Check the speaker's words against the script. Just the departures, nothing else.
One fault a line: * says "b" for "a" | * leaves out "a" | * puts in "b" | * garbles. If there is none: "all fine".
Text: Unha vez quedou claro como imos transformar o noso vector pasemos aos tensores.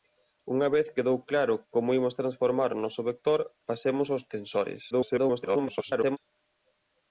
* garbles